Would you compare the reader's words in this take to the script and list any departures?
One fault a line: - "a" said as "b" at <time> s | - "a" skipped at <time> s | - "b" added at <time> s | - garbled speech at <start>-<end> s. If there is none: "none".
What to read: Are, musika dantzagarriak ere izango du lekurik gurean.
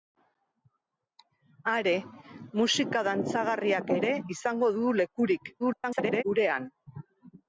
- garbled speech at 5.6-6.2 s